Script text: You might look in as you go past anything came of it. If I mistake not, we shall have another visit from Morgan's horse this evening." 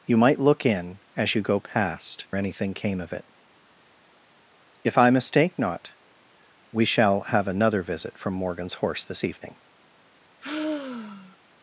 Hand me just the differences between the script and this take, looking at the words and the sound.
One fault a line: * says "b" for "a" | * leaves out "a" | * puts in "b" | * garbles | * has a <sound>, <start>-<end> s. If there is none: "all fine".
* has a sigh, 10.4-11.4 s